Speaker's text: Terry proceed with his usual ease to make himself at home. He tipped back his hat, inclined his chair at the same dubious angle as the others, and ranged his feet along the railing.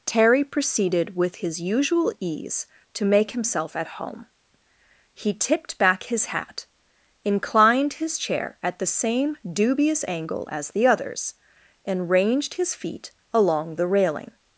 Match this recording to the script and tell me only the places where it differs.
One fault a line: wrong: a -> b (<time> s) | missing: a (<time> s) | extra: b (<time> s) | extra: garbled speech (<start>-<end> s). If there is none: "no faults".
wrong: proceed -> proceeded (0.4 s)